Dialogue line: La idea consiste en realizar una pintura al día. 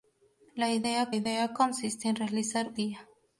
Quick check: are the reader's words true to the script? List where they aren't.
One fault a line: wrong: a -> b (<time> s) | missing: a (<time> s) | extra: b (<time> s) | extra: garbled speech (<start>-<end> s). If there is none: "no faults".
extra: idea (1.1 s)
missing: una pintura al (2.7 s)